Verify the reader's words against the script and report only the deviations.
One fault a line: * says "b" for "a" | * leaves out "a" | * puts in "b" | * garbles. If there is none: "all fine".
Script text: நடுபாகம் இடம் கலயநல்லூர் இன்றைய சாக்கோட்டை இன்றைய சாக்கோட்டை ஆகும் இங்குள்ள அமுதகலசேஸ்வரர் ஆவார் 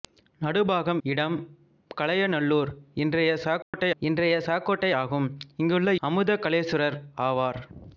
all fine